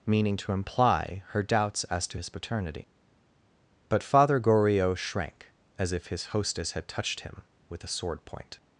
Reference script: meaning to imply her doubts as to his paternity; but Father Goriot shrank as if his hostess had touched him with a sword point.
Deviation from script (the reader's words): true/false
false